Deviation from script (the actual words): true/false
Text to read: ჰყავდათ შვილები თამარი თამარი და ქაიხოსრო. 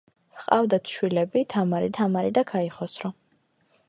false